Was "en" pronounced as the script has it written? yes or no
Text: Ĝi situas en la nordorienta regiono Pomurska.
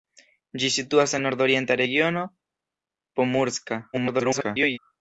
no